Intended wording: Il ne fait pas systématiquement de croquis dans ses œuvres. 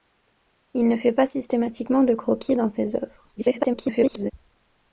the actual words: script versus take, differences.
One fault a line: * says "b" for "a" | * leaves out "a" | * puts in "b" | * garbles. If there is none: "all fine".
* garbles